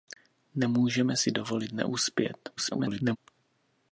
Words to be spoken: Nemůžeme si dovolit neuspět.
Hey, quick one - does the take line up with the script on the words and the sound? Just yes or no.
no